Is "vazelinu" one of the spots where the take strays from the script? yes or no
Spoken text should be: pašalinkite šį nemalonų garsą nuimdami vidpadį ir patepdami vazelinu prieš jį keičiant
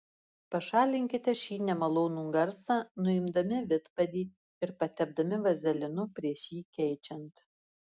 no